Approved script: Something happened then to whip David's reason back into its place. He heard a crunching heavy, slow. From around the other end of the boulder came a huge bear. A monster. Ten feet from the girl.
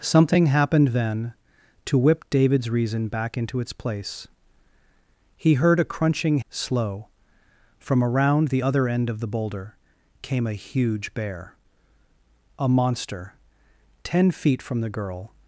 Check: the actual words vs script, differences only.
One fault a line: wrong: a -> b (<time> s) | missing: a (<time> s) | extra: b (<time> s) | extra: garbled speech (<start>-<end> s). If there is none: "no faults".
missing: heavy (6.4 s)